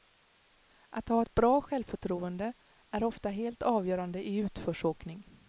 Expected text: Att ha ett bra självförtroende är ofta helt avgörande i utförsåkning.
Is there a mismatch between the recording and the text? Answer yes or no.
no